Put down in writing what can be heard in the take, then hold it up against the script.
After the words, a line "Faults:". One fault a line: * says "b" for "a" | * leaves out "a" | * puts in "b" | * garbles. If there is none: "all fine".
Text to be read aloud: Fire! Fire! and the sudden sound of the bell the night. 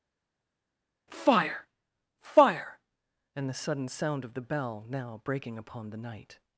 Fire! Fire! and the sudden sound of the bell now, breaking upon the night.
Faults:
* puts in "now breaking upon"